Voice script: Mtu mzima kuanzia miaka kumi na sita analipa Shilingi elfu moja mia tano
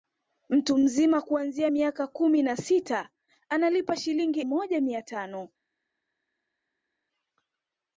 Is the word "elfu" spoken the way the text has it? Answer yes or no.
no